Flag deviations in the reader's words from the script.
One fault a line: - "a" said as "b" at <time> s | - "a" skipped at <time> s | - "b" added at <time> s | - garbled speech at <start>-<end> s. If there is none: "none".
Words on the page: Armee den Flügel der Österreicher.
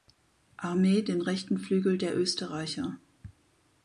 - "rechten" added at 1.2 s